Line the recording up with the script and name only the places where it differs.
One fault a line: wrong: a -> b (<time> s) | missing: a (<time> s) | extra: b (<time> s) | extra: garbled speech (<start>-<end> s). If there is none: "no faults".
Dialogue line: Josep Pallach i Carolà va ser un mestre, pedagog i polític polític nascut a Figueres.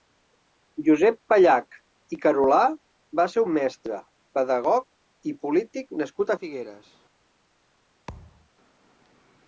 missing: polític (6.0 s)